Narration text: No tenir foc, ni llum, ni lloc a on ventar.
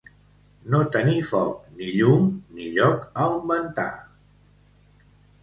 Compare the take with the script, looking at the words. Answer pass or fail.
pass